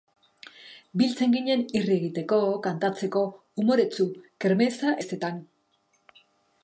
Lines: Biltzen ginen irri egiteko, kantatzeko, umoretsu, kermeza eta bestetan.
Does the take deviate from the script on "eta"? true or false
true